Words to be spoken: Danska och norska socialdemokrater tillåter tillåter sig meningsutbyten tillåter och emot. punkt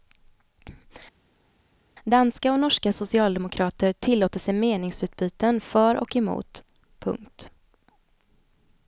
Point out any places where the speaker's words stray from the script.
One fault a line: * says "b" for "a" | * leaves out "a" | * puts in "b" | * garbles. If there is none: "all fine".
* leaves out "tillåter"
* says "för" for "tillåter"